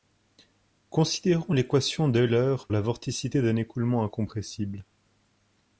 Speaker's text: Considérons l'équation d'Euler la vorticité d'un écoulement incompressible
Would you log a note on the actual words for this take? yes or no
no